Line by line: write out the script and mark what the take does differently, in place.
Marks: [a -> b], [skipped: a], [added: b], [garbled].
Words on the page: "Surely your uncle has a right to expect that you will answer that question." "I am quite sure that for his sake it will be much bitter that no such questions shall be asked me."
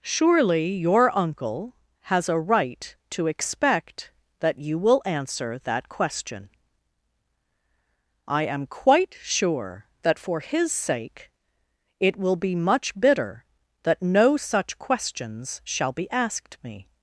"Surely your uncle has a right to expect that you will answer that question." "I am quite sure that for his sake it will be much bitter that no such questions shall be asked me."